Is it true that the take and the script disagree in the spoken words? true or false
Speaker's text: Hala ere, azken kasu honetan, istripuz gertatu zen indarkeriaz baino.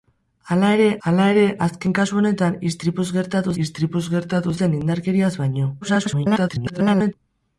true